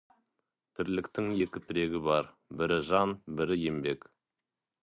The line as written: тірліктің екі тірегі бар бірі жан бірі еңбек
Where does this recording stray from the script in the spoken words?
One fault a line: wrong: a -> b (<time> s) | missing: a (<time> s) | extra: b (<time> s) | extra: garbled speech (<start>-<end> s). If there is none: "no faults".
no faults